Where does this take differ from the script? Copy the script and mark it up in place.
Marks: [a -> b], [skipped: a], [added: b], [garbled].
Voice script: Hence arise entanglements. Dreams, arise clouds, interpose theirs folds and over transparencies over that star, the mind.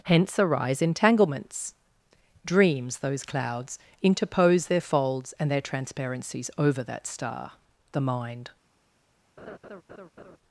Hence arise entanglements. Dreams, [arise -> those] clouds, interpose [theirs -> their] folds and [over -> their] transparencies over that star, the mind.